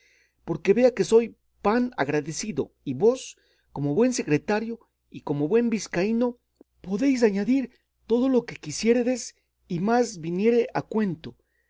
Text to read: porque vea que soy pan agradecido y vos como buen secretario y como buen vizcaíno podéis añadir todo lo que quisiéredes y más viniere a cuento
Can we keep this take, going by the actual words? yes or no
yes